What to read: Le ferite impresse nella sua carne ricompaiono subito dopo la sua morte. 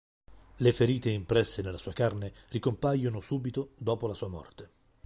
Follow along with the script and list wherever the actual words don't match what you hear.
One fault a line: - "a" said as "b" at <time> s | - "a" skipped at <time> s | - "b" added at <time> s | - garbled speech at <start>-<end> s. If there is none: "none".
none